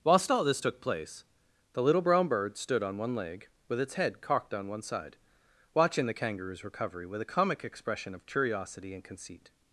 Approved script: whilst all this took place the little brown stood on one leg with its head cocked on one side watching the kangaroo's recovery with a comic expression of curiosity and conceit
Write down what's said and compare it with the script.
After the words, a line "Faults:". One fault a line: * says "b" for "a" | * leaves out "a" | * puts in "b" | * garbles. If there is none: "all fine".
whilst all this took place the little brown bird stood on one leg with its head cocked on one side watching the kangaroo's recovery with a comic expression of curiosity and conceit
Faults:
* puts in "bird"